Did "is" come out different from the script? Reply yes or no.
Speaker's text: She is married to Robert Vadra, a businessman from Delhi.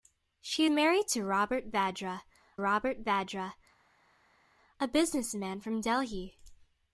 yes